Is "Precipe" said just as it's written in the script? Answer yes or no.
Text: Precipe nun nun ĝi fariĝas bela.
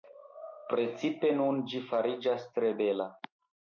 yes